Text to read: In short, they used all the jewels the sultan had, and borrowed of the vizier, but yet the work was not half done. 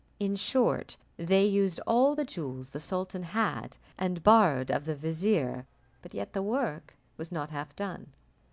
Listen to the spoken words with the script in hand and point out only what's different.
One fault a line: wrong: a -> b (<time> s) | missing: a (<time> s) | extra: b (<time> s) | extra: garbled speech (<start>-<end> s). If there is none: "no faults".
no faults